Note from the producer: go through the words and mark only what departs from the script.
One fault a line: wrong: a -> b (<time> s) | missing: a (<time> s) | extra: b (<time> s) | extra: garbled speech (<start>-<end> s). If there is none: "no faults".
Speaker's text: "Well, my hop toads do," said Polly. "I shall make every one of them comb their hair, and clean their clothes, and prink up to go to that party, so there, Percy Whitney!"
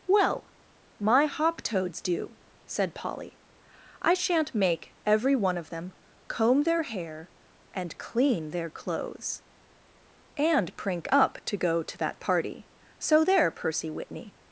wrong: shall -> shan't (4.2 s)